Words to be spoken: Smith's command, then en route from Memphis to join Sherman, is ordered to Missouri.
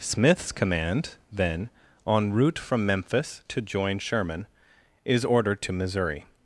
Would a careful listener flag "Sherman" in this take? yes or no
no